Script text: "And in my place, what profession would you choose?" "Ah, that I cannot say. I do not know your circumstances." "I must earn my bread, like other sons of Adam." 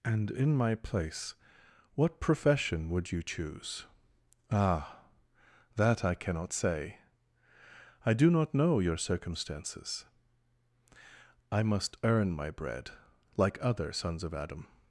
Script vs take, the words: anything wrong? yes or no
no